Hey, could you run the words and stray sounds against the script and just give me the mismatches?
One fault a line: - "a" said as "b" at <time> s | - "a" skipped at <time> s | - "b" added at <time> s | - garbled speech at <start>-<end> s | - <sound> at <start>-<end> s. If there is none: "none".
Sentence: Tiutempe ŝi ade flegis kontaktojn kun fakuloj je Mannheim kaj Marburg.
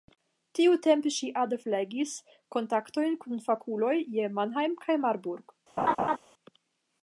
- laugh at 5.8-6.2 s